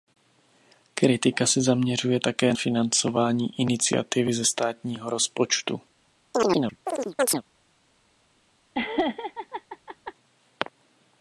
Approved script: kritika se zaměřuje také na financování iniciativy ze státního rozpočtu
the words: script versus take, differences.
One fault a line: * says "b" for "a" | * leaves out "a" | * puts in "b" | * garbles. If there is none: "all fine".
* leaves out "na"